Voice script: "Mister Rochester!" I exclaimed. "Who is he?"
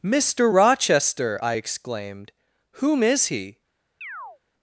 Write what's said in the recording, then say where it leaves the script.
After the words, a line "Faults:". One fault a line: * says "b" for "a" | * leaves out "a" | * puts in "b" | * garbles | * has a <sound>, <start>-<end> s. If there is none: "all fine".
"Mister Rochester!" I exclaimed. "Whom is he?"
Faults:
* says "Whom" for "Who"
* has a chirp, 4.0-4.4 s